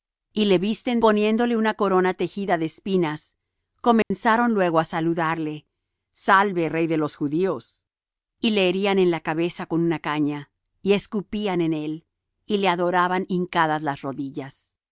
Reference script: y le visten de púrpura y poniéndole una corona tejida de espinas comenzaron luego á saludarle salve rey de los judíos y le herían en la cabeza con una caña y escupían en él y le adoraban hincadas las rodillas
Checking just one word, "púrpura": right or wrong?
wrong